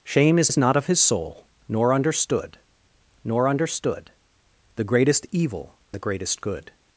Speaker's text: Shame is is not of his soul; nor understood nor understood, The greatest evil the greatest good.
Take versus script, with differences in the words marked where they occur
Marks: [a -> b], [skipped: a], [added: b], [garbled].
Shame is is not of his soul; nor understood nor understood, The greatest evil the greatest good.